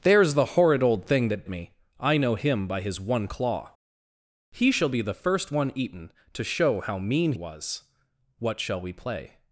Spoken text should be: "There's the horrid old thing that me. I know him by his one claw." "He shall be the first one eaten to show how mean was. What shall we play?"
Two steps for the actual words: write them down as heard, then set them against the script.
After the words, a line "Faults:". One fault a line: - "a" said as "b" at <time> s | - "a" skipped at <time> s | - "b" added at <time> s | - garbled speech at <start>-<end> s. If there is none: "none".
"There's the horrid old thing that me. I know him by his one claw." "He shall be the first one eaten to show how mean was. What shall we play?"
Faults:
none